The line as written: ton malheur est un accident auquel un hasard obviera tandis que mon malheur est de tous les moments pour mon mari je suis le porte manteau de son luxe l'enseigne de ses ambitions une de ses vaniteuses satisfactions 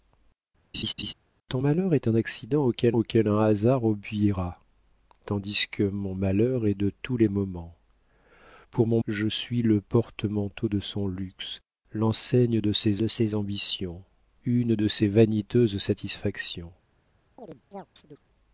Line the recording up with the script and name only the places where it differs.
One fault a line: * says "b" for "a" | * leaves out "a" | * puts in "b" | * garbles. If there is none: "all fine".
* puts in "auquel"
* leaves out "mari"
* puts in "de ses"